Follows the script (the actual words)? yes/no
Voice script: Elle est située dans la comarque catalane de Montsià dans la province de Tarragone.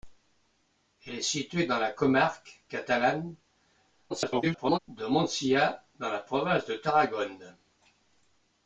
no